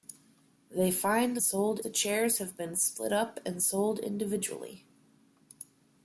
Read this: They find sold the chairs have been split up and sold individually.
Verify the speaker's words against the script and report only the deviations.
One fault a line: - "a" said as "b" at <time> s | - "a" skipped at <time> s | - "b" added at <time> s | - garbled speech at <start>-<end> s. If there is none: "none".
none